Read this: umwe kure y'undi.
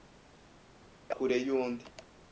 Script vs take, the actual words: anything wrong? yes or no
no